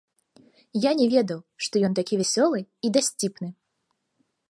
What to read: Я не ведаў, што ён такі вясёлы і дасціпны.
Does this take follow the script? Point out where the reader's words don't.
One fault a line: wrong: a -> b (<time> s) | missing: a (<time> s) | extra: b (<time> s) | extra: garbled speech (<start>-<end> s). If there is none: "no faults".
no faults